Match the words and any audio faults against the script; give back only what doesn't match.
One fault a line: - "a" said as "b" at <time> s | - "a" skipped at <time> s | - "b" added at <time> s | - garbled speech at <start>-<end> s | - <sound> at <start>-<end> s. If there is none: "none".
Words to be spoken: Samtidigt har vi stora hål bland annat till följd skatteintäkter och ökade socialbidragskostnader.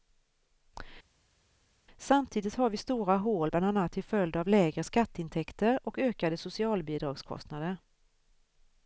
- "av lägre" added at 4.4 s